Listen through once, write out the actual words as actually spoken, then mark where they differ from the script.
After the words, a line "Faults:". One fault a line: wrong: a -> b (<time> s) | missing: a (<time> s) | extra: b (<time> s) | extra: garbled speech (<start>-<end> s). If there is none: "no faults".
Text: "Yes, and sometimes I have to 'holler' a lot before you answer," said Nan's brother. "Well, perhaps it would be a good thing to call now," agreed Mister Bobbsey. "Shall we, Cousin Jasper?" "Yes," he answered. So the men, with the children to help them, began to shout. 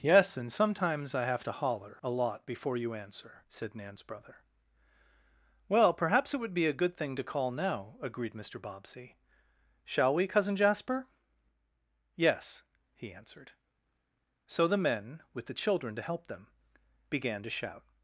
"Yes, and sometimes I have to 'holler' a lot before you answer," said Nan's brother. "Well, perhaps it would be a good thing to call now," agreed Mister Bobbsey. "Shall we, Cousin Jasper?" "Yes," he answered. So the men, with the children to help them, began to shout.
Faults:
no faults